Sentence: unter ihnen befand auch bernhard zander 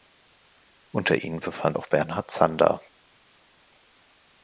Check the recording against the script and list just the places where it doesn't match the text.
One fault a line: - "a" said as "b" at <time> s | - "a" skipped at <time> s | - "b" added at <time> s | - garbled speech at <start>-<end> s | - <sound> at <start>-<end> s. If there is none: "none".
none